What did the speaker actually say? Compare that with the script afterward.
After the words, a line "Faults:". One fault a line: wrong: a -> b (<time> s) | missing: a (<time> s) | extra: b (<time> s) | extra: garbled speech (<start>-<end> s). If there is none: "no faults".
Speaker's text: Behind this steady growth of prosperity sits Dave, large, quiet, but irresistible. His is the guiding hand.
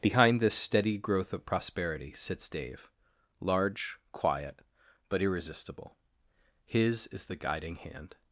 Behind this steady growth of prosperity sits Dave, large, quiet, but irresistible. His is the guiding hand.
Faults:
no faults